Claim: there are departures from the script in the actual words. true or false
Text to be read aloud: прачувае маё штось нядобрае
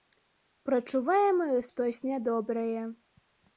false